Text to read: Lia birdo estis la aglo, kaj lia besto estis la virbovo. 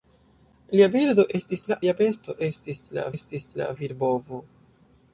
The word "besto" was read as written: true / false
false